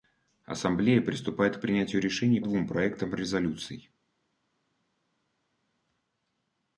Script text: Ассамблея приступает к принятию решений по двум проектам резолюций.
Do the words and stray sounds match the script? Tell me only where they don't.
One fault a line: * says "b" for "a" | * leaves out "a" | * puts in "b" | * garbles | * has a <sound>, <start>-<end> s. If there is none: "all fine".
* leaves out "по"